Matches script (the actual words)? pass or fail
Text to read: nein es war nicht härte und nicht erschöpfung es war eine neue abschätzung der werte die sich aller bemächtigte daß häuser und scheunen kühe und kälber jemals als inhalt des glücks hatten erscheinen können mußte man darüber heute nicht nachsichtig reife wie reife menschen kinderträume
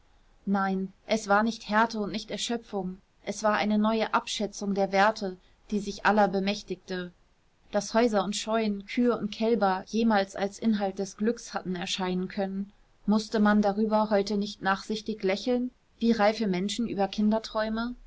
fail